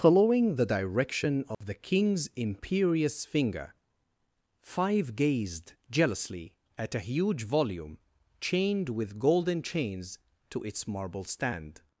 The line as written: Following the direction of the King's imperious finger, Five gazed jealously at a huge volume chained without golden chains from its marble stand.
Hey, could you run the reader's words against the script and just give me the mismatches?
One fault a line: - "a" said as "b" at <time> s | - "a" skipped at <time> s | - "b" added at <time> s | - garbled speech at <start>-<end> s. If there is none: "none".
- "without" said as "with" at 8.9 s
- "from" said as "to" at 10.5 s